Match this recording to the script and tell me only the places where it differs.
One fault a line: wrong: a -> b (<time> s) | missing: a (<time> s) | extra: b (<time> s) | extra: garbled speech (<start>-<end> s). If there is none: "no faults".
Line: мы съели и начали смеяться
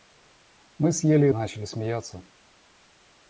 no faults